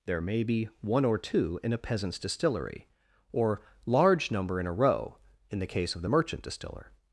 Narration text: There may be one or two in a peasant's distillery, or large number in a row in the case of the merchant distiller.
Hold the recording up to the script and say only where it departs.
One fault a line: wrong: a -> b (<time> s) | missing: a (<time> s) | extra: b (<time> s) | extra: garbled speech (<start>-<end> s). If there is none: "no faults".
no faults